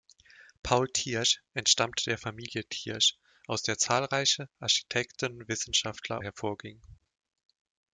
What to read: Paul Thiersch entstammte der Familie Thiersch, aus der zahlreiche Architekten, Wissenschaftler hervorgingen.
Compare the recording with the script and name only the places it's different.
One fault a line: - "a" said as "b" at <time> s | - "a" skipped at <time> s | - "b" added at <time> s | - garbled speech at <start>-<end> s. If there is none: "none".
none